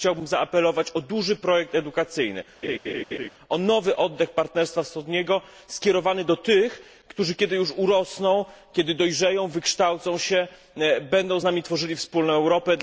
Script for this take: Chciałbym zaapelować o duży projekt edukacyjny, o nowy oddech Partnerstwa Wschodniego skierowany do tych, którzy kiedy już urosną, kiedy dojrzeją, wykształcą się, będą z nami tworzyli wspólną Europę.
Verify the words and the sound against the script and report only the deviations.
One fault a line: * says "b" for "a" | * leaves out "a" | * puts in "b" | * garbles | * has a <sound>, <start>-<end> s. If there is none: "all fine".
* has a laugh, 2.6-3.3 s